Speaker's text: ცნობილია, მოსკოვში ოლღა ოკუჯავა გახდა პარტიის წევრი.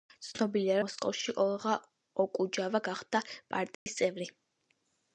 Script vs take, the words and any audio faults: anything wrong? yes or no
yes